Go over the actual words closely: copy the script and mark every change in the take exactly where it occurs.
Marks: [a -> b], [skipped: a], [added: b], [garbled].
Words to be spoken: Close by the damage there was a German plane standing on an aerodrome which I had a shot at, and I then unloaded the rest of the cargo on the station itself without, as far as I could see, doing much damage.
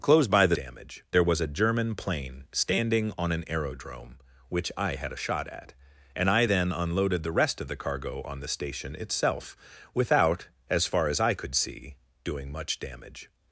Close by the damage there was a German plane standing on an aerodrome which I had a shot at, and I then unloaded the rest of the cargo on the station itself without, as far as I could see, doing much damage.